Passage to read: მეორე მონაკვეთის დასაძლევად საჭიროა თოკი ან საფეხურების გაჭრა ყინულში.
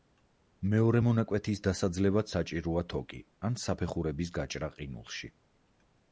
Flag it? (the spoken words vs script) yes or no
no